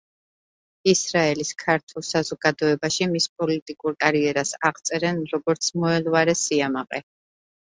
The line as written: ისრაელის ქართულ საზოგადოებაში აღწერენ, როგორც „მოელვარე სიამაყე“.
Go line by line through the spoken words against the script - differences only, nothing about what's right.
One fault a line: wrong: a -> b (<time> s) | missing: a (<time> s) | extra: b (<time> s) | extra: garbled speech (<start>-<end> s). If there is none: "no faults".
extra: მის პოლიტიკურ კარიერას (3.1 s)